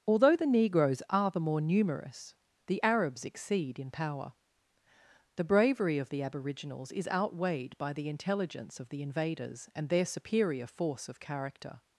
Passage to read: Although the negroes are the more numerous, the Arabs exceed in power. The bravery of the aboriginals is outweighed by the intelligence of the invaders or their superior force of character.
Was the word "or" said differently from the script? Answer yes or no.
yes